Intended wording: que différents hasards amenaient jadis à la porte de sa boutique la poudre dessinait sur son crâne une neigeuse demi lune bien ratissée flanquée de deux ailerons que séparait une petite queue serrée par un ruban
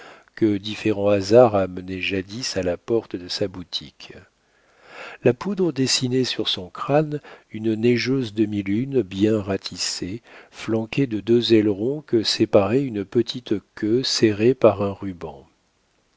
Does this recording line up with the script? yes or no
yes